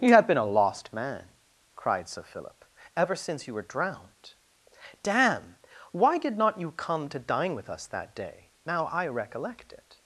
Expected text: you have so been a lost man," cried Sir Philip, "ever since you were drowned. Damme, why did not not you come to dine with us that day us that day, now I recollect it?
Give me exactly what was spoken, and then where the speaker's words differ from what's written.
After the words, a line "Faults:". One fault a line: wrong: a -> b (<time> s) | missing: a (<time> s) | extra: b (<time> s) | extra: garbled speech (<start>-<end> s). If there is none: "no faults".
you have been a lost man," cried Sir Philip, "ever since you were drowned. Damme, why did not you come to dine with us that day, now I recollect it?
Faults:
missing: so (0.3 s)
missing: not (6.6 s)
missing: us that day (8.5 s)